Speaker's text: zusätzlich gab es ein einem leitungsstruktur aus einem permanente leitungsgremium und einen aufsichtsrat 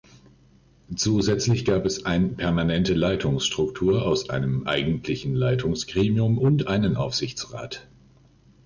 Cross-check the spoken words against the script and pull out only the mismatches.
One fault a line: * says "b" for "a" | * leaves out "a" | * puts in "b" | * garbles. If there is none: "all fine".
* says "permanente" for "einem"
* says "eigentlichen" for "permanente"